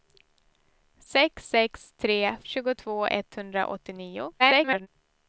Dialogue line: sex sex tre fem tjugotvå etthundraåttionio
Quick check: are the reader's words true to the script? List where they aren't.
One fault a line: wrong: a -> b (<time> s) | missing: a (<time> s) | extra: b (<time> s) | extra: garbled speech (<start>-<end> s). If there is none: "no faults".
missing: fem (2.2 s)
extra: garbled speech (4.4-4.9 s)